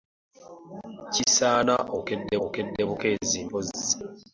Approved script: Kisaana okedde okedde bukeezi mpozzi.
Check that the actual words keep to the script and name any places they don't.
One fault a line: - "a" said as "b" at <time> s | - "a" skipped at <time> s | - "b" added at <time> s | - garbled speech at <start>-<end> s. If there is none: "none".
none